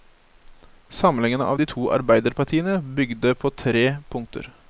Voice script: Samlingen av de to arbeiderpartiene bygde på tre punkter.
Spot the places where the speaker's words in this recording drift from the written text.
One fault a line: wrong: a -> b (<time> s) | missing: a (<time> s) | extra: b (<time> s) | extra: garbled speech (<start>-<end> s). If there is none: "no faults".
no faults